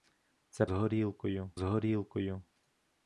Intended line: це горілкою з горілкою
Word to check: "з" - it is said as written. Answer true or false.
true